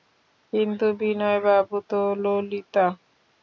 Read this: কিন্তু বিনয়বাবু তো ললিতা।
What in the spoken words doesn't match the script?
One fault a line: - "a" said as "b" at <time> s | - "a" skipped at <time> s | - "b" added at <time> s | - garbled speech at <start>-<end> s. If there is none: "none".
none